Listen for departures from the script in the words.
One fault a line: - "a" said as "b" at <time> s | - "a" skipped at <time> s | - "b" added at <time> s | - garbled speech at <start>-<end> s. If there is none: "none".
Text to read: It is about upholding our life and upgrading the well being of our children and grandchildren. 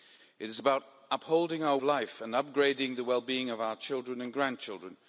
none